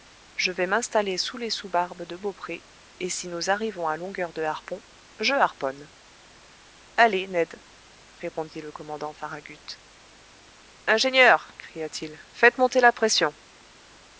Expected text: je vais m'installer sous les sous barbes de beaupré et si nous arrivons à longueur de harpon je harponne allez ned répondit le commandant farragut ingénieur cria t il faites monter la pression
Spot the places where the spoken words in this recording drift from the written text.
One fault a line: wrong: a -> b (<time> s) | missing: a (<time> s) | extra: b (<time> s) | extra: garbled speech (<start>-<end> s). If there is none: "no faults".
no faults